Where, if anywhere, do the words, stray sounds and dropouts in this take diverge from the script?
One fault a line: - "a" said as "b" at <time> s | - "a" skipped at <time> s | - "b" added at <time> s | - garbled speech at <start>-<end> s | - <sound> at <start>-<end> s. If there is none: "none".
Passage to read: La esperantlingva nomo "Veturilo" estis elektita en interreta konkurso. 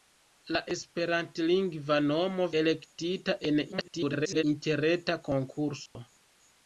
- "Veturilo estis" skipped at 2.4 s
- garbled speech at 3.7-4.4 s
- dropout at 5.9-6.0 s